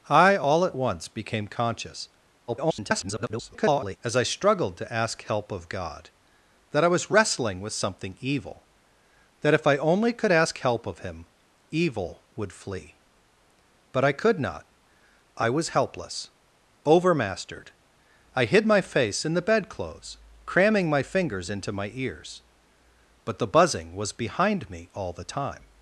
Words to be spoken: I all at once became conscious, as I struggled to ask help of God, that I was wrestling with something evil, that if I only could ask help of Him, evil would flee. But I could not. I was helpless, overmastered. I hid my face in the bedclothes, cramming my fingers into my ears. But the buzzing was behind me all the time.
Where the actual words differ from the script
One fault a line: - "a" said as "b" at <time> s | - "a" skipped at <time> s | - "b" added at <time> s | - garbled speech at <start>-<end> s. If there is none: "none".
- garbled speech at 2.5-4.0 s